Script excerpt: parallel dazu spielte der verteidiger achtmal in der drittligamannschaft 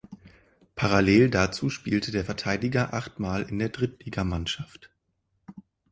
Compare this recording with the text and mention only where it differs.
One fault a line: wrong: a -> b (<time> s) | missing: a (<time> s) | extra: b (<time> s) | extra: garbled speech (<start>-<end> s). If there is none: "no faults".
no faults